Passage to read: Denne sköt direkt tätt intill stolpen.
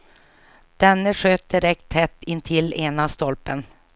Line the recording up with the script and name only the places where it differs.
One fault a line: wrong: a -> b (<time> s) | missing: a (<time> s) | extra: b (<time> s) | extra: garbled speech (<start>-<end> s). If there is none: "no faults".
extra: ena (2.8 s)